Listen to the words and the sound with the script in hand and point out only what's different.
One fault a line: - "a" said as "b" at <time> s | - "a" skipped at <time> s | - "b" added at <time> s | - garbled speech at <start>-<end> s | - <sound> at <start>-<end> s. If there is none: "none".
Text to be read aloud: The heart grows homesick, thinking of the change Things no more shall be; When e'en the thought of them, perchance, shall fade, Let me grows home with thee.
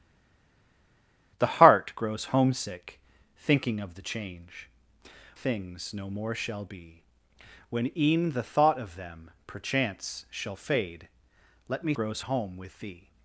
none